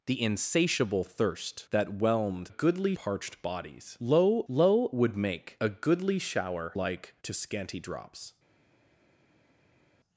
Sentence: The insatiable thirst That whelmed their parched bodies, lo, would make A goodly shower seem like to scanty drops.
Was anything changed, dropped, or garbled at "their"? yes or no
yes